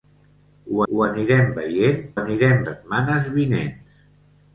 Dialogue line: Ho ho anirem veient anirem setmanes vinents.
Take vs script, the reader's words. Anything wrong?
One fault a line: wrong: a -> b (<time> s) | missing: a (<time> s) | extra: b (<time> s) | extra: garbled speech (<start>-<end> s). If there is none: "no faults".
no faults